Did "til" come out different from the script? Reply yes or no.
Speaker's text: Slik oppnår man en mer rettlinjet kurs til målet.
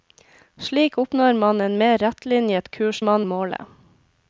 yes